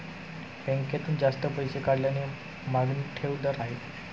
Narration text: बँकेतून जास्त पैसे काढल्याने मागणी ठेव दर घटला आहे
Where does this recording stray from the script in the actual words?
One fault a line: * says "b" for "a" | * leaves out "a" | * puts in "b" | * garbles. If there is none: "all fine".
* leaves out "घटला"